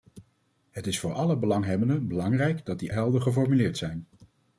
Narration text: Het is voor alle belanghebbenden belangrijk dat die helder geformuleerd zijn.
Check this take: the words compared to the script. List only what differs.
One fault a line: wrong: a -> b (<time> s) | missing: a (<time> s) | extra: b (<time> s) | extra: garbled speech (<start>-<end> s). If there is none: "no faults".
no faults